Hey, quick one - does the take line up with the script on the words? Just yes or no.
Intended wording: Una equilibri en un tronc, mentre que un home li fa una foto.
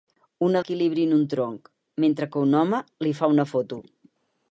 yes